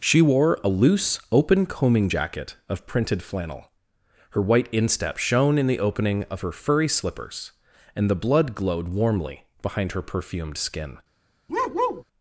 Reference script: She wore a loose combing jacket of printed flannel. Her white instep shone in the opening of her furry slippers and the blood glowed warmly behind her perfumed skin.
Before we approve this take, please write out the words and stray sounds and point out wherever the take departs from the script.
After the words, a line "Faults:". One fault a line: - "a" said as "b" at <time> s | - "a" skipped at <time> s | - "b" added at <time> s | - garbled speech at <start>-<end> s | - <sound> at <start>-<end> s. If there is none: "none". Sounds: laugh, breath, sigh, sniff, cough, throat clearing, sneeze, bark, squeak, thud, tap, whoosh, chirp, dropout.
She wore a loose open combing jacket of printed flannel. Her white instep shone in the opening of her furry slippers and the blood glowed warmly behind her perfumed skin.
Faults:
- "open" added at 1.3 s
- bark at 11.5-12.0 s